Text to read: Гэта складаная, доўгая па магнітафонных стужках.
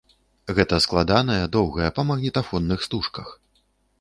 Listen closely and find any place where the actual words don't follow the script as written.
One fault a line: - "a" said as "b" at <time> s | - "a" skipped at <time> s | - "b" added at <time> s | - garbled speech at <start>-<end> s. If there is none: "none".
none